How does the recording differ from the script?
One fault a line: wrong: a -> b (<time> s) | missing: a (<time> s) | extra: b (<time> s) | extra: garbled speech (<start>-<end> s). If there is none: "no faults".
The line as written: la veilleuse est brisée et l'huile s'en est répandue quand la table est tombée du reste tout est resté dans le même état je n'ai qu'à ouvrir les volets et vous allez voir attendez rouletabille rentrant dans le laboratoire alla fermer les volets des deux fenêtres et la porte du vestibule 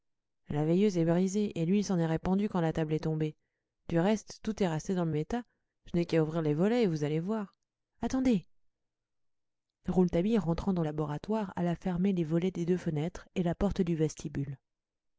missing: même (5.1 s)
missing: le (10.8 s)